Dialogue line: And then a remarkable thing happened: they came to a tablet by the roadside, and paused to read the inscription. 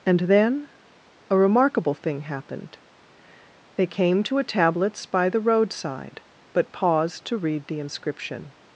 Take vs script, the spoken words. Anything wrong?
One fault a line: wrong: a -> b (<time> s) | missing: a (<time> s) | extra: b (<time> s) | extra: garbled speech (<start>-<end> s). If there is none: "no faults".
wrong: tablet -> tablets (4.4 s)
wrong: and -> but (6.5 s)